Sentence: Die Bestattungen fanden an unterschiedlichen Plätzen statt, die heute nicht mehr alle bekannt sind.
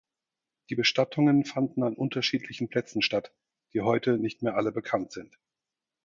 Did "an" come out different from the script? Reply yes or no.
no